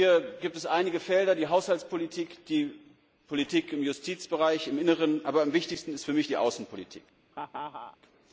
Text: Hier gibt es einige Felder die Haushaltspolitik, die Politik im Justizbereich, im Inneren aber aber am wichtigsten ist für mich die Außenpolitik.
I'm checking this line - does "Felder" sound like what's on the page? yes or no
yes